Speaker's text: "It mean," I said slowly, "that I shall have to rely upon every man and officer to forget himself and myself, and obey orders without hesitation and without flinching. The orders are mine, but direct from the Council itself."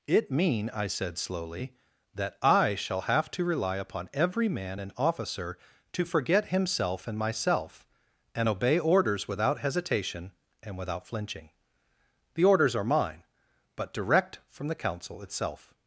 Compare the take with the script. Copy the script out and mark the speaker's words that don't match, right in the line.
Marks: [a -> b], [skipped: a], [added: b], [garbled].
"It mean," I said slowly, "that I shall have to rely upon every man and officer to forget himself and myself, and obey orders without hesitation and without flinching. The orders are mine, but direct from the Council itself."